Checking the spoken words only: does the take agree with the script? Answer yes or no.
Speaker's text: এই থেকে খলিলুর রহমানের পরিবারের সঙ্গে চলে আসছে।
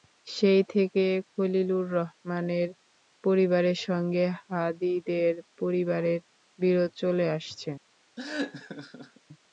no